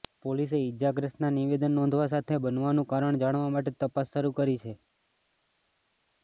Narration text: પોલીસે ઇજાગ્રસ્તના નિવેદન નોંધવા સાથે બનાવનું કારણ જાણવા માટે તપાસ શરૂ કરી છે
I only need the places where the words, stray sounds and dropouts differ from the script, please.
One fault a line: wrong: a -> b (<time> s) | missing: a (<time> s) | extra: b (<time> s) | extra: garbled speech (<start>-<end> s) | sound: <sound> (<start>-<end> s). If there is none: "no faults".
no faults